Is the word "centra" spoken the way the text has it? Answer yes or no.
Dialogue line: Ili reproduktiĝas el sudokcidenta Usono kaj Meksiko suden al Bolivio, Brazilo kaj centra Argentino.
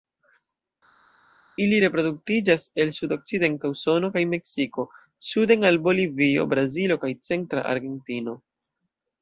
yes